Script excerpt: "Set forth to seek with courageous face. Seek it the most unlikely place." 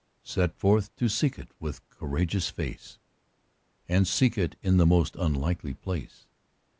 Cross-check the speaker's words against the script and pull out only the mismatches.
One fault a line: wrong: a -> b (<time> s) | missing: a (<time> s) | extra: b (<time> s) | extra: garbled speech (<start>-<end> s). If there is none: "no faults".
extra: it (1.4 s)
extra: And (3.9 s)
extra: in (4.6 s)